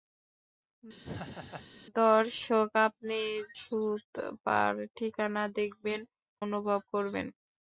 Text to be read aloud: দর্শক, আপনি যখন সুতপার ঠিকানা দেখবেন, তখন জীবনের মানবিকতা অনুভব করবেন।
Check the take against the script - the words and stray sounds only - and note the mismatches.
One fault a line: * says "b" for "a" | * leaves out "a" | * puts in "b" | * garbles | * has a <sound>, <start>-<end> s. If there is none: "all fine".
* has a laugh, 1.0-1.7 s
* leaves out "যখন"
* leaves out "তখন জীবনের মানবিকতা"